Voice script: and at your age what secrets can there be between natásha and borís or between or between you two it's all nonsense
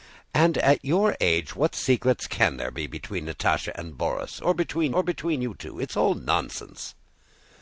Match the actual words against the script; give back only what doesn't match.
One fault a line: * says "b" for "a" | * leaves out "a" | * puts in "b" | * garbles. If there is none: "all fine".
all fine